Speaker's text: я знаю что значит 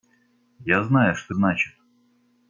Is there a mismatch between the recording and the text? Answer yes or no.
no